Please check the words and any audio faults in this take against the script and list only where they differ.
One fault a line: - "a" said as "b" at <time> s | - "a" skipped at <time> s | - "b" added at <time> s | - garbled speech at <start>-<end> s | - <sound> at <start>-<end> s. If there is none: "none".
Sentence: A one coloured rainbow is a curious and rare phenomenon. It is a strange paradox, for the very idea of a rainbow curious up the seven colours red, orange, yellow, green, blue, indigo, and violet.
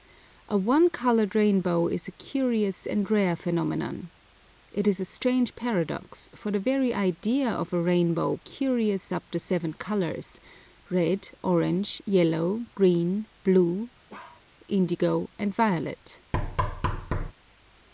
- bark at 14.1-14.5 s
- thud at 16.3-17.3 s